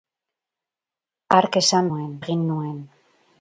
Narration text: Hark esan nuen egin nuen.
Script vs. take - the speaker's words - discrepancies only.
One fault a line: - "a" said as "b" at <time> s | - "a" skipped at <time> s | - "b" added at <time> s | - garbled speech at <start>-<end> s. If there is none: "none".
none